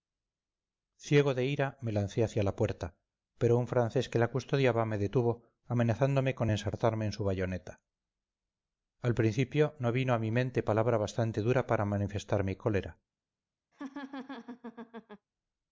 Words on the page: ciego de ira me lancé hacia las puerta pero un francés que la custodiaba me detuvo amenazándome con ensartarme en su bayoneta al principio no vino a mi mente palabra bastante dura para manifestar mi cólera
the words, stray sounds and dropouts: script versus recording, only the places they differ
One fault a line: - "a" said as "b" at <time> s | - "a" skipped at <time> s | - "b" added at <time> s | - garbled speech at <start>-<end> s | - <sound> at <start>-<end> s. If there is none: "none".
- "las" said as "la" at 2.4 s
- laugh at 13.7-15.3 s